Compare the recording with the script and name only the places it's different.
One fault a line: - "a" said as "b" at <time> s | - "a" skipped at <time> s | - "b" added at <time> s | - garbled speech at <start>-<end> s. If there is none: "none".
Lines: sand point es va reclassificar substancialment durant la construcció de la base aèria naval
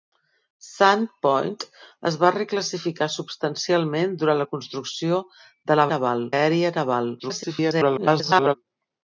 - "base" said as "naval" at 5.9 s
- garbled speech at 7.2-8.5 s